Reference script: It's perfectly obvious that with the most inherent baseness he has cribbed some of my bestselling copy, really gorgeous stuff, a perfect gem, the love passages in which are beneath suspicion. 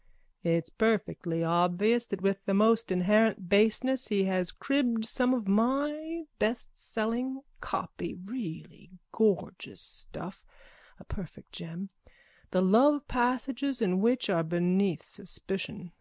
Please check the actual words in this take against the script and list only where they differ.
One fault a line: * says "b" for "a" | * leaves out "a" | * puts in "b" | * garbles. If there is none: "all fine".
all fine